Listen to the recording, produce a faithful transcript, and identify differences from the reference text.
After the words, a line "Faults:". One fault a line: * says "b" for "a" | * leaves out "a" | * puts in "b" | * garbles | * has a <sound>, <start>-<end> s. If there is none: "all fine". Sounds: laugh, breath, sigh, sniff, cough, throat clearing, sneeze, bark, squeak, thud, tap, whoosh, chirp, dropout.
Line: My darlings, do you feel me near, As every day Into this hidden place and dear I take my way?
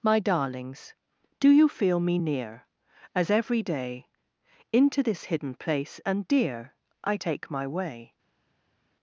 My darlings, do you feel me near, As every day Into this hidden place and dear I take my way?
Faults:
all fine